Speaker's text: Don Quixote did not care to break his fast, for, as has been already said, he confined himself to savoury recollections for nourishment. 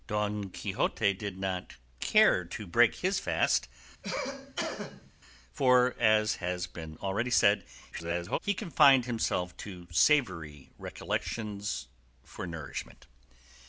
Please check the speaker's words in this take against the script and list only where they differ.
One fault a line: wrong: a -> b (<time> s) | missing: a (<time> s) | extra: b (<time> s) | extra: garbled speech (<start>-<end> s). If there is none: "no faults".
extra: garbled speech (7.9-8.4 s)